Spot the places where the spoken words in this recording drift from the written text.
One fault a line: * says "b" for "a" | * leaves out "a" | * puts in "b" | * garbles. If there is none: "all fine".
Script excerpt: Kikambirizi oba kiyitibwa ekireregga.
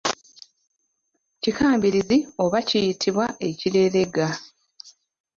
all fine